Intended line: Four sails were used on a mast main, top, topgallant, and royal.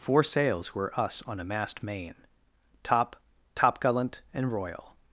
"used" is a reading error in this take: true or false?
true